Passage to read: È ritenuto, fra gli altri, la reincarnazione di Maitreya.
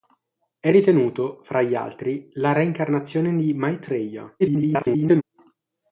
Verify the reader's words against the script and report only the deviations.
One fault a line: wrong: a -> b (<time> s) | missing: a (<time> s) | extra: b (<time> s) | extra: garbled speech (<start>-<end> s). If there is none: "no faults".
extra: garbled speech (4.4-5.2 s)